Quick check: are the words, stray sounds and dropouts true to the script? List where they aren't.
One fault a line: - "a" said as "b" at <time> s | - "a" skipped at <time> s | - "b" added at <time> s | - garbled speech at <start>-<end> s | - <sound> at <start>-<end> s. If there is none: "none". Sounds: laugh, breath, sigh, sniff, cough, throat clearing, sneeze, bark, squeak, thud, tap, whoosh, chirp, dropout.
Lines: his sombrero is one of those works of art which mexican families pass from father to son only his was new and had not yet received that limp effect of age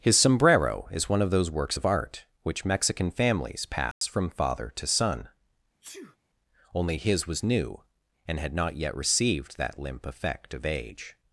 - dropout at 3.9-4.0 s
- sneeze at 5.8-6.2 s